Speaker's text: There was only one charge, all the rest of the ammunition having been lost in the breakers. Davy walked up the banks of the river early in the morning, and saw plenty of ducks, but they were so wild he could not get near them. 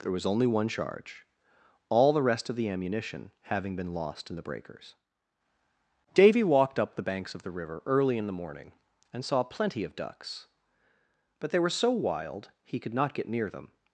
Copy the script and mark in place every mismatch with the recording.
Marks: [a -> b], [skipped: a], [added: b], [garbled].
There was only one charge, all the rest of the ammunition having been lost in the breakers. Davy walked up the banks of the river early in the morning, and saw plenty of ducks, but they were so wild he could not get near them.